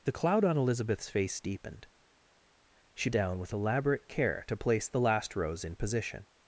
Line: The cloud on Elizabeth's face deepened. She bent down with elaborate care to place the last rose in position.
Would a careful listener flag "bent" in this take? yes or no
yes